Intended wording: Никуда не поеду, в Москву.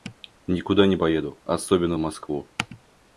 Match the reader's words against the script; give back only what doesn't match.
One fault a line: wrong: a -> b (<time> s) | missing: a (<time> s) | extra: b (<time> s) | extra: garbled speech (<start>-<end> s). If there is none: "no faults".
extra: особенно (1.4 s)